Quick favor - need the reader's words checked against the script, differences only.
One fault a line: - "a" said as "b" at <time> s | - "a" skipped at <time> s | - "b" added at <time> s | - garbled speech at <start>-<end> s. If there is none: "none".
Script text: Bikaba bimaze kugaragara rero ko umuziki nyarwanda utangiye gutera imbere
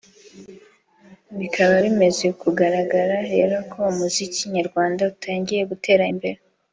none